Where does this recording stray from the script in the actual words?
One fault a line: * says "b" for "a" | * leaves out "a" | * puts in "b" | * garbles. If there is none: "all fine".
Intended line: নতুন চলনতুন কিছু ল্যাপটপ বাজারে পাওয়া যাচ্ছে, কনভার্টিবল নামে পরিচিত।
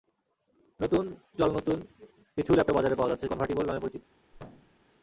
all fine